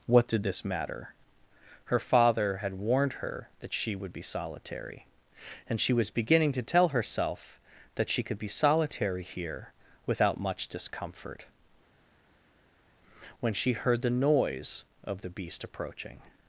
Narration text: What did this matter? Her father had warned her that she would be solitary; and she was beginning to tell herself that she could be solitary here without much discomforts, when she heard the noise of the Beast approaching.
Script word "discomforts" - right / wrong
wrong